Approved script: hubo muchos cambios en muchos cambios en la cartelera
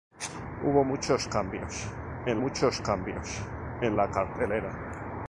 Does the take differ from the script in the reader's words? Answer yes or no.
no